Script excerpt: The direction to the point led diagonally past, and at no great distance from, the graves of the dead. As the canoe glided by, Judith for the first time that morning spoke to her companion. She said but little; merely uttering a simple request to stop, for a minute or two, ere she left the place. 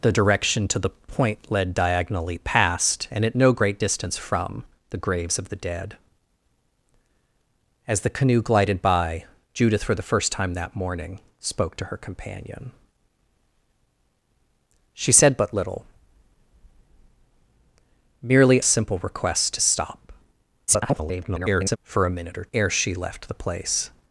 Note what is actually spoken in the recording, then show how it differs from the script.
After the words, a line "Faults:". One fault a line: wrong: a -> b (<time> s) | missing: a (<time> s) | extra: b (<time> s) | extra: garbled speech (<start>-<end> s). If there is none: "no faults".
The direction to the point led diagonally past, and at no great distance from, the graves of the dead. As the canoe glided by, Judith for the first time that morning spoke to her companion. She said but little; merely a simple request to stop, [garbled] for a minute or ere she left the place.
Faults:
missing: uttering (18.6 s)
extra: garbled speech (20.7-21.8 s)
missing: two (22.5 s)